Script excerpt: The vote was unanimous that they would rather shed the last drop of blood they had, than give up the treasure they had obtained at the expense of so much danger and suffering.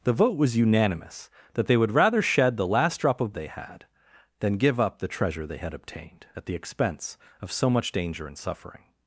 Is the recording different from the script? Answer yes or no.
yes